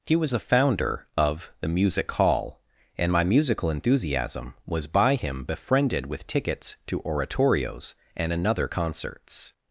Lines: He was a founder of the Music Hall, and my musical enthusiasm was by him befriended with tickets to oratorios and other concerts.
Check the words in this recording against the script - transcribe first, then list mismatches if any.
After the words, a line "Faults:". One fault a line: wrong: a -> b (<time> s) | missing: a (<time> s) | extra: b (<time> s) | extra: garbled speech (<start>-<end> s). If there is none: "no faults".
He was a founder of the Music Hall, and my musical enthusiasm was by him befriended with tickets to oratorios and another concerts.
Faults:
wrong: other -> another (8.3 s)